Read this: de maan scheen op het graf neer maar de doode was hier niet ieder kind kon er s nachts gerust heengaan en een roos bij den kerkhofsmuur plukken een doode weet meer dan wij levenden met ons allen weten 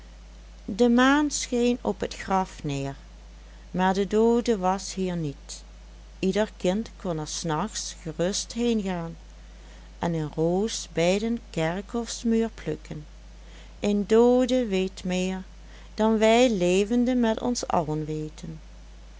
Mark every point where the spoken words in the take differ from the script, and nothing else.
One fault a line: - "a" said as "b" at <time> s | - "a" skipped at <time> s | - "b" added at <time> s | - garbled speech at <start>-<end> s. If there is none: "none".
none